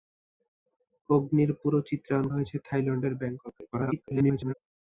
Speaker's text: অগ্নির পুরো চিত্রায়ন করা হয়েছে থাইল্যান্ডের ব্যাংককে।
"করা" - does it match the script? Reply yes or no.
no